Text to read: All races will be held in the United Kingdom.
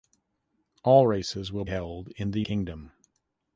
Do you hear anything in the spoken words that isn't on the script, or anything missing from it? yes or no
yes